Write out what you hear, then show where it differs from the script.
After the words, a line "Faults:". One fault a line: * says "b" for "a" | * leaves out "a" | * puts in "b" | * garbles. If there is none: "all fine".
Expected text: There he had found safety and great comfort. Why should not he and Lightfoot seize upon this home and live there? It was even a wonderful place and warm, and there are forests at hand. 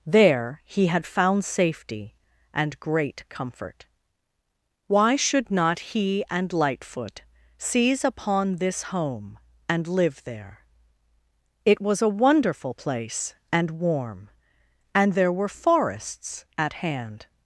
There he had found safety and great comfort. Why should not he and Lightfoot seize upon this home and live there? It was a wonderful place and warm, and there were forests at hand.
Faults:
* leaves out "even"
* says "were" for "are"